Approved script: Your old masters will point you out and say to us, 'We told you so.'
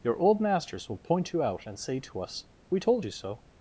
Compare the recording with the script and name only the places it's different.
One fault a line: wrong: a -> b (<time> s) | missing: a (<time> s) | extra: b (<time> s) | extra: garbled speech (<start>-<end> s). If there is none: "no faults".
no faults